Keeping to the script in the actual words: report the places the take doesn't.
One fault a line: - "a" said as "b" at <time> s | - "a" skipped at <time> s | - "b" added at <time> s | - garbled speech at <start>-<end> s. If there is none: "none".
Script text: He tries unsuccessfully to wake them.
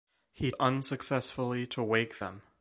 - "tries" skipped at 0.5 s